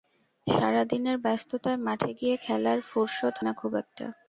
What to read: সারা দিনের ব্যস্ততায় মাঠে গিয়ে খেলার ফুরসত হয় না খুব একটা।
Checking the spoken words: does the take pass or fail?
fail